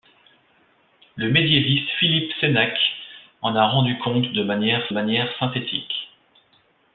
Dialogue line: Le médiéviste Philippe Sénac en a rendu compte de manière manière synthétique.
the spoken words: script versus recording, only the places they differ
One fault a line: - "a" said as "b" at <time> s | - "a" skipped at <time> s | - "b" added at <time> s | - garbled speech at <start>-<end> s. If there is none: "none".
none